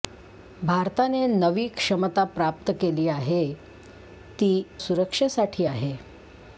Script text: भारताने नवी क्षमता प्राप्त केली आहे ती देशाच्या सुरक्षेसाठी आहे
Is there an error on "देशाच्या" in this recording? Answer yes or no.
yes